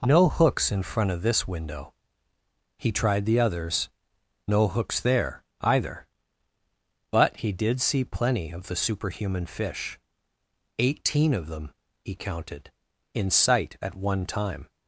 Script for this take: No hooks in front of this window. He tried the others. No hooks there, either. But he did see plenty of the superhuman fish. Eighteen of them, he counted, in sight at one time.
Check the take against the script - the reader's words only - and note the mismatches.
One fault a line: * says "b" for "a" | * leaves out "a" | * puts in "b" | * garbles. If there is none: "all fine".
all fine